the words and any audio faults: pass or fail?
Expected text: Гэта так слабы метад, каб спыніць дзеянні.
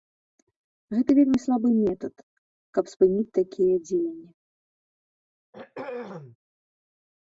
fail